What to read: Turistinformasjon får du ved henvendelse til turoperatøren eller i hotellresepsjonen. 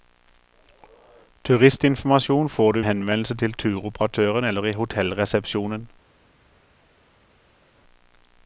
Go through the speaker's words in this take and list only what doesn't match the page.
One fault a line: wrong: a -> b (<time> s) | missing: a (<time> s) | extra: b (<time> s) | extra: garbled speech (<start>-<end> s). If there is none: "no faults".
missing: ved (2.8 s)